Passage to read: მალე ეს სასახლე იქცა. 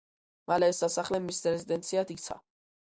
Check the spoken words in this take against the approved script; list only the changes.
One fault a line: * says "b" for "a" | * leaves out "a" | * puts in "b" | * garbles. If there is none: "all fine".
* puts in "მის რეზიდენციად"